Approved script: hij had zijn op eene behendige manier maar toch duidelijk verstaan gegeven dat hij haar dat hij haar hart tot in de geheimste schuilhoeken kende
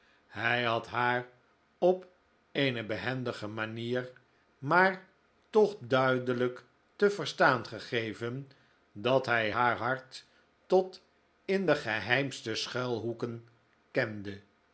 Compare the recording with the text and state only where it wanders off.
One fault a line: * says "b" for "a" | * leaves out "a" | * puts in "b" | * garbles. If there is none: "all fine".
* says "haar" for "zijn"
* puts in "te"
* leaves out "dat hij haar"